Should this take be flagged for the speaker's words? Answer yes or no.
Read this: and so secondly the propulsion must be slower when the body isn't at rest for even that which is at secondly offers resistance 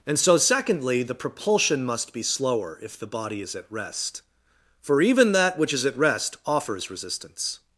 yes